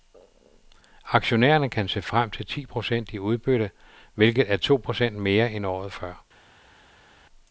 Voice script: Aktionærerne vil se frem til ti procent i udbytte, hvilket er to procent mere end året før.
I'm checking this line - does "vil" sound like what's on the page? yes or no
no